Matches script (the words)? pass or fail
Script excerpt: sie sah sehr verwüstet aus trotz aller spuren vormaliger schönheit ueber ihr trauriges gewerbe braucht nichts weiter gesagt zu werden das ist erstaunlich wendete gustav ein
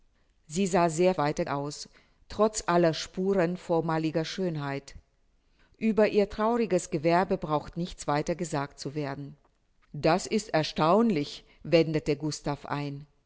fail